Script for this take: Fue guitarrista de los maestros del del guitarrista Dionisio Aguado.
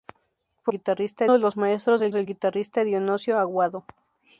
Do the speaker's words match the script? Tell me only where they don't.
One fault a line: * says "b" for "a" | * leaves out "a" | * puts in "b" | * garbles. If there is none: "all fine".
all fine